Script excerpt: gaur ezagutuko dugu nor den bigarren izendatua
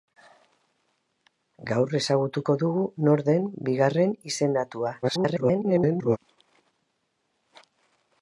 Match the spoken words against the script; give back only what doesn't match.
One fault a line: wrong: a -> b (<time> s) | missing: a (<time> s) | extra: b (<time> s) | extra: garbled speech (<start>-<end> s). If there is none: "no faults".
extra: garbled speech (5.0-6.2 s)